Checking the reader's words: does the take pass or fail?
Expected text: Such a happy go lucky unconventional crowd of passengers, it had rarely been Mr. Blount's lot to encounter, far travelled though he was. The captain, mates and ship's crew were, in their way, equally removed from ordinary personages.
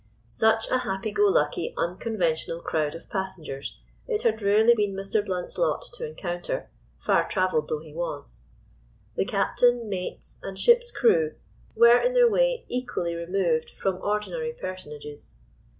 pass